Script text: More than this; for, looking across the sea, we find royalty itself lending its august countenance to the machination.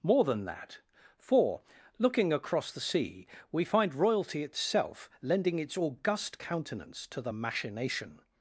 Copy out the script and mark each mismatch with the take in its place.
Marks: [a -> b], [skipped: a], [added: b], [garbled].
More than [this; -> that] for, looking across the sea, we find royalty itself lending its august countenance to the machination.